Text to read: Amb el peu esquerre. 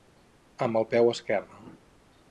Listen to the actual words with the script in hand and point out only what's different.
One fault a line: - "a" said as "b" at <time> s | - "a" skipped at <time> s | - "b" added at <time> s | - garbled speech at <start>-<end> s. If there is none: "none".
none